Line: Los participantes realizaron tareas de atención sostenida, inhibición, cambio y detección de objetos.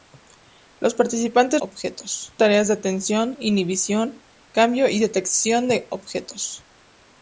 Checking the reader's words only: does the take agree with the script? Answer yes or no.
no